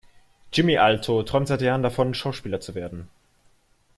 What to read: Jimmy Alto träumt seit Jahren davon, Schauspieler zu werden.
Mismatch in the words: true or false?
false